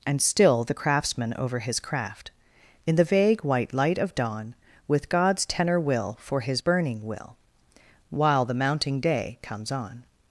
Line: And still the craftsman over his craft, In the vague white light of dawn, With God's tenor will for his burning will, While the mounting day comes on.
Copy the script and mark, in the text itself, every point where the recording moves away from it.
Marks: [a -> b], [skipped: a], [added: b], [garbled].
And still the craftsman over his craft, In the vague white light of dawn, With God's tenor will for his burning will, While the mounting day comes on.